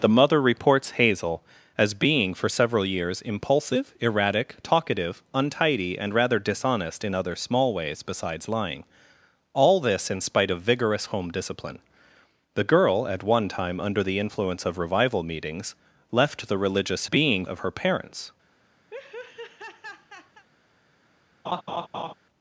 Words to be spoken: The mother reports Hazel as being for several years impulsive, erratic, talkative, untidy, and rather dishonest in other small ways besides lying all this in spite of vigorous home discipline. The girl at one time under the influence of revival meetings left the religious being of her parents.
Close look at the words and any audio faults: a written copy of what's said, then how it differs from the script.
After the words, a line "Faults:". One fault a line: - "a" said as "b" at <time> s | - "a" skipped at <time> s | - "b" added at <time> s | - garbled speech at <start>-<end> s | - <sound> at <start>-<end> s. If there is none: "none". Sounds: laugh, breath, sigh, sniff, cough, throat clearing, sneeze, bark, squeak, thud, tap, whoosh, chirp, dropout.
The mother reports Hazel as being for several years impulsive, erratic, talkative, untidy, and rather dishonest in other small ways besides lying all this in spite of vigorous home discipline. The girl at one time under the influence of revival meetings left the religious being of her parents.
Faults:
- laugh at 18.9-20.4 s
- laugh at 21.4-22.1 s